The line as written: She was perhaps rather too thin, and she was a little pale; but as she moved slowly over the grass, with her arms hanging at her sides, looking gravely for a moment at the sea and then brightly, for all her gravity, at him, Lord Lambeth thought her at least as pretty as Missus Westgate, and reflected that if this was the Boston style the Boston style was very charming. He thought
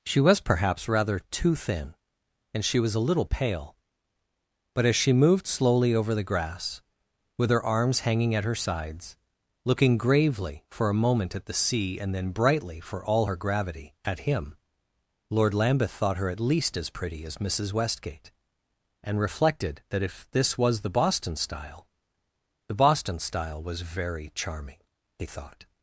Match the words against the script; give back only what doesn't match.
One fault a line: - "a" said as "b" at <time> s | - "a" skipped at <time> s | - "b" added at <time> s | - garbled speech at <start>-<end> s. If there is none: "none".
none